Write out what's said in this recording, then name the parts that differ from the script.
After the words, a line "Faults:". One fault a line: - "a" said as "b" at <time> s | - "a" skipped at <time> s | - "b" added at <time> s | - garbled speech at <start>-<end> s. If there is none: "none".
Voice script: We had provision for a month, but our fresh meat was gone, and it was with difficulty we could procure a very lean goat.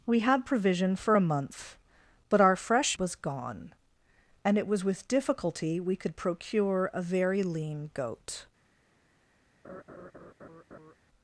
We had provision for a month, but our fresh was gone, and it was with difficulty we could procure a very lean goat.
Faults:
- "meat" skipped at 3.0 s